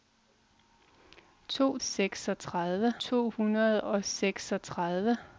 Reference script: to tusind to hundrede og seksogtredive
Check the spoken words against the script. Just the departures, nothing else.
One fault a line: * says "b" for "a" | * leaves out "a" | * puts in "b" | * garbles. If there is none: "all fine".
* says "seksogtredive" for "tusind"